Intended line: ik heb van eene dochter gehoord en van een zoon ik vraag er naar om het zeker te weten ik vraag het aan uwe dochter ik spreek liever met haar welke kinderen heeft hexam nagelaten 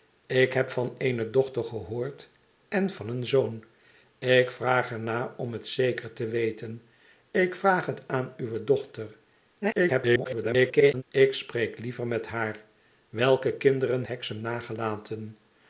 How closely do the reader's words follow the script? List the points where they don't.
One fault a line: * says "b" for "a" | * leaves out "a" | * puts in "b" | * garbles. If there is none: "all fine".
* garbles
* leaves out "heeft"